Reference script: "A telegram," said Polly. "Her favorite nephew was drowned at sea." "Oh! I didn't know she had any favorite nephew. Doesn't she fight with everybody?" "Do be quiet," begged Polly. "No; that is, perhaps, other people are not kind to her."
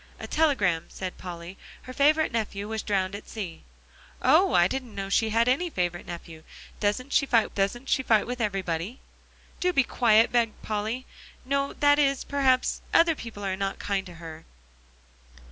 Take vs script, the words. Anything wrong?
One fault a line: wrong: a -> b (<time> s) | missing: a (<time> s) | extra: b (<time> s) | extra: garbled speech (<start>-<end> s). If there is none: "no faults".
extra: doesn't she fight (7.5 s)